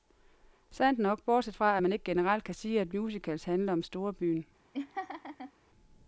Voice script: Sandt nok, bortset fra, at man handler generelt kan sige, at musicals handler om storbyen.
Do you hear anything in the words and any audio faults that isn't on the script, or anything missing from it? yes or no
yes